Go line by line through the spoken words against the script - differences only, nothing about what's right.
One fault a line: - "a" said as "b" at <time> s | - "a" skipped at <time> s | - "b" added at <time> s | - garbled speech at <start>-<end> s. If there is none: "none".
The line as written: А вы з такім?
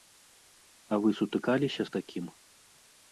- "сутыкаліся" added at 1.2 s